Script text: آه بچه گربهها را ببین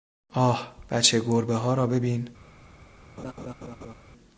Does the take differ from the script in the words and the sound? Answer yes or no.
yes